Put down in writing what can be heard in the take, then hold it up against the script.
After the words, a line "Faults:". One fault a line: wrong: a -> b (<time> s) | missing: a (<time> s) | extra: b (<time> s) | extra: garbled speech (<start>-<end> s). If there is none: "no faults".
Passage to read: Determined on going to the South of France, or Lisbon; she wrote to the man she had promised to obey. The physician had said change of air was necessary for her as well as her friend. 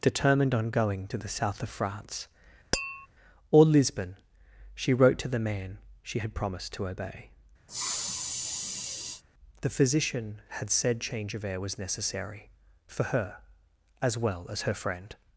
Determined on going to the South of France, or Lisbon; she wrote to the man she had promised to obey. The physician had said change of air was necessary for her as well as her friend.
Faults:
no faults